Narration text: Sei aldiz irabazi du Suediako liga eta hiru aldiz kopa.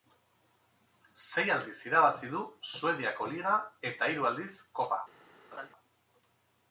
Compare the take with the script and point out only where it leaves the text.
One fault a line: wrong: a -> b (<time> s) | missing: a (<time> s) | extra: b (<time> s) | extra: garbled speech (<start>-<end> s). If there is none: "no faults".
no faults